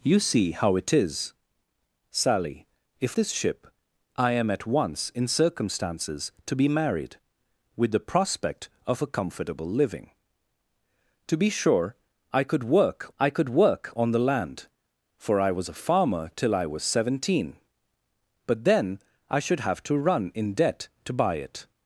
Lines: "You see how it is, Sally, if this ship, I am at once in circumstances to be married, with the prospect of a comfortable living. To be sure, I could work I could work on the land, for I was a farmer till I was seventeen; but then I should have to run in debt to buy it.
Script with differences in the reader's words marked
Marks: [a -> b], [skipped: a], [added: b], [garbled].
"You see how it is, Sally, if this ship, I am at once in circumstances to be married, with the prospect of a comfortable living. To be sure, I could work I could work on the land, for I was a farmer till I was seventeen; but then I should have to run in debt to buy it.